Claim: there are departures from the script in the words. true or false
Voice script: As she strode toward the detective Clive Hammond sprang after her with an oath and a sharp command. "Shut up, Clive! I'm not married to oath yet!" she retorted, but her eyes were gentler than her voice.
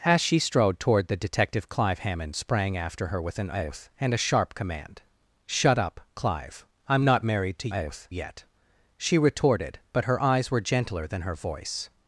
false